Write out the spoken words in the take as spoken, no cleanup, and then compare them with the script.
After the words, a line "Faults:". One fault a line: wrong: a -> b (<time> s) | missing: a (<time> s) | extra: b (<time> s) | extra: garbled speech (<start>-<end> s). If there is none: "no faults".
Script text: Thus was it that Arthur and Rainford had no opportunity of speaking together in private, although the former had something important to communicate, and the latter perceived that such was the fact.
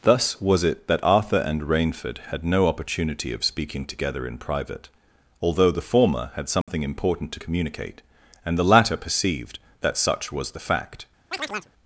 Thus was it that Arthur and Rainford had no opportunity of speaking together in private, although the former had something important to communicate, and the latter perceived that such was the fact.
Faults:
no faults